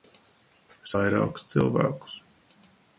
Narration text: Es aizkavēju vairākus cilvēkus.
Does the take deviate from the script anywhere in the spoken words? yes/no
yes